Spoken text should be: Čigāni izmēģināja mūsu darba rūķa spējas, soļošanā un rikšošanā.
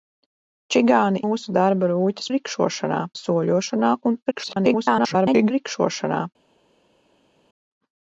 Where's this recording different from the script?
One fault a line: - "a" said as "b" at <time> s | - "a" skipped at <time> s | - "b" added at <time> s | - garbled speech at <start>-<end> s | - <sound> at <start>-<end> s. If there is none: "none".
- "izmēģināja" skipped at 1.2 s
- "spējas" said as "rikšošanā" at 2.4 s
- garbled speech at 4.3-5.5 s